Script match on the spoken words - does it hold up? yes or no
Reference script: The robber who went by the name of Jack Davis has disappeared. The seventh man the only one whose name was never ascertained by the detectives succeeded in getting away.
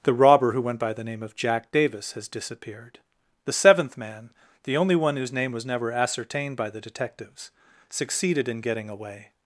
yes